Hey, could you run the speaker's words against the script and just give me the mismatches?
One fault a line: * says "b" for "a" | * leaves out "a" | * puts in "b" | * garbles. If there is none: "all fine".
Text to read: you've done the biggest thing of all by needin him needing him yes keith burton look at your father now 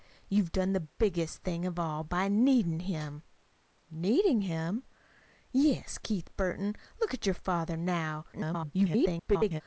* garbles